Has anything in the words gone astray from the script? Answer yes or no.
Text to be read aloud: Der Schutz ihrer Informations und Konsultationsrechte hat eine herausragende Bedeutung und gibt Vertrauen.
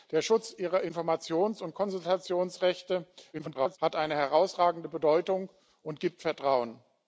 yes